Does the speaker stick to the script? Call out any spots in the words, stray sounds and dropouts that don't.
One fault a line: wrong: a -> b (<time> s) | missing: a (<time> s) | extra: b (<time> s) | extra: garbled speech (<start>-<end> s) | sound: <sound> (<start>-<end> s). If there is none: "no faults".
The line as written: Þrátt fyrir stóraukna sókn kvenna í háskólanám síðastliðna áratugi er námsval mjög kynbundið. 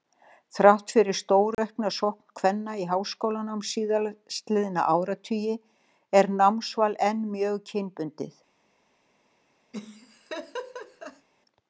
sound: dropout (1.5-1.6 s)
extra: enn (7.1 s)
sound: laugh (9.7-11.3 s)